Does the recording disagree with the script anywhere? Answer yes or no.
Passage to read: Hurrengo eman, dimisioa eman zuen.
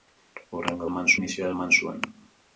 no